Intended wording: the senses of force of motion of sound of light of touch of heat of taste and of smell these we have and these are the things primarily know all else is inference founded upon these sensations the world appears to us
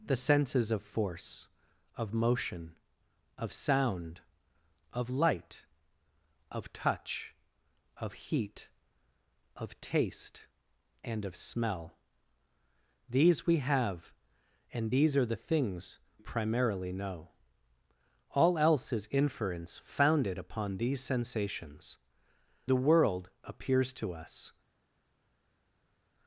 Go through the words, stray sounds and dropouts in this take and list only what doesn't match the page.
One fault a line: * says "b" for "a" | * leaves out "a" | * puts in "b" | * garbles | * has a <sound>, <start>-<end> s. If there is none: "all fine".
all fine